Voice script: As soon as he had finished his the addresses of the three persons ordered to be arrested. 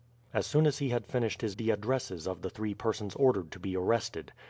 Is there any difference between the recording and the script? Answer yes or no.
no